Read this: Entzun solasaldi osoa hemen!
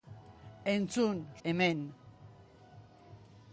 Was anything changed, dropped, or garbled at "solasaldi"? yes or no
yes